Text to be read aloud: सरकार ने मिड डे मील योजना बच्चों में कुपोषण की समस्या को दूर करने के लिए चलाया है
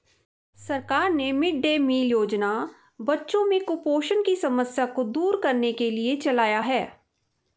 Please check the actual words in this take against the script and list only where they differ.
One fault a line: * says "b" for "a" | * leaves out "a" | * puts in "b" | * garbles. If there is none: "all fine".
all fine